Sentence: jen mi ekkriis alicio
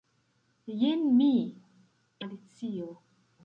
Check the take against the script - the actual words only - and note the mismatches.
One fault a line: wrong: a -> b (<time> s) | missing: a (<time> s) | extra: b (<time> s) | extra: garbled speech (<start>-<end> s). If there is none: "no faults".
missing: ekkriis (1.3 s)